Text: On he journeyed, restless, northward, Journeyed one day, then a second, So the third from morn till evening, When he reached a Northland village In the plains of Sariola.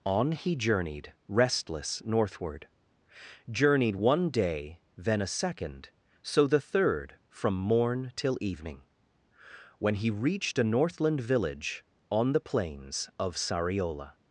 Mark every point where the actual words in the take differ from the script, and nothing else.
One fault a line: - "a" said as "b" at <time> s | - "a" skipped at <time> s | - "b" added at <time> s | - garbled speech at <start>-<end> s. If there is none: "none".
- "In" said as "On" at 12.1 s